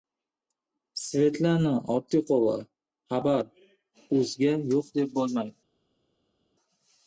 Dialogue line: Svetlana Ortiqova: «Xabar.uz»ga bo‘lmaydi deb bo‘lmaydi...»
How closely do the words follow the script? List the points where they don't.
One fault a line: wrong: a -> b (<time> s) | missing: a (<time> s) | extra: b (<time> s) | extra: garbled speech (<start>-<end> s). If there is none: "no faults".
wrong: bo‘lmaydi -> yo‘q (4.7 s)